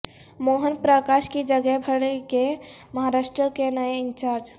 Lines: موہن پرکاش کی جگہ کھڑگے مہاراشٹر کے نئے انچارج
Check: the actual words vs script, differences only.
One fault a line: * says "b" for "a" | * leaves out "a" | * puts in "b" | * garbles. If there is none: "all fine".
all fine